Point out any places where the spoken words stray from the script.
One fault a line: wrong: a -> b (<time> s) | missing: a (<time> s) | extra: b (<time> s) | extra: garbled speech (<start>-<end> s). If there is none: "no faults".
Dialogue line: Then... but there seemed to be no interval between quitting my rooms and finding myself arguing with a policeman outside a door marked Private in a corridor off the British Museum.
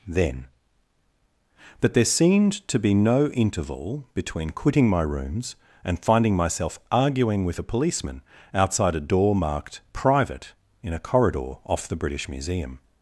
no faults